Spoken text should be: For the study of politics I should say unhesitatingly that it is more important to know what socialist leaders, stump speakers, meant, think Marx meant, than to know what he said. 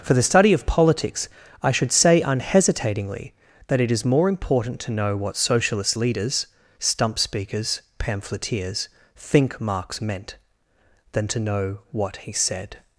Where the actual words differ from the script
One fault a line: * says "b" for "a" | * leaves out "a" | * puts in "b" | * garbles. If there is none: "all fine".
* says "pamphleteers" for "meant"